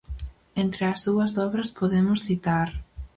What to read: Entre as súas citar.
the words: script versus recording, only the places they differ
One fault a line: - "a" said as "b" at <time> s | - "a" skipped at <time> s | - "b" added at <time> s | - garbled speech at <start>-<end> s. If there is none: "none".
- "obras podemos" added at 1.5 s